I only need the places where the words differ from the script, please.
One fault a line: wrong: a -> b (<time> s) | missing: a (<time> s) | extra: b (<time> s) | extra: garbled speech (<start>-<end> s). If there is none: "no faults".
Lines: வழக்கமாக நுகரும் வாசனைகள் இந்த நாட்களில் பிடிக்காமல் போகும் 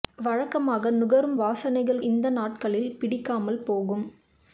no faults